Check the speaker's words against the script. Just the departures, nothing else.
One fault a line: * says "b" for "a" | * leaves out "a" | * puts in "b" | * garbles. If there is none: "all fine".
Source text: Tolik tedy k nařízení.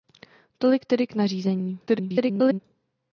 * garbles